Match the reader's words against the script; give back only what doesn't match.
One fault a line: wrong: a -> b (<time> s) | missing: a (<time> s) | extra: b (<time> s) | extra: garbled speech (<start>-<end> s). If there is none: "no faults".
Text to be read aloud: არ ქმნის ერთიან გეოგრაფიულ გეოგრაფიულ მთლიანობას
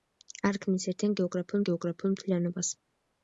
no faults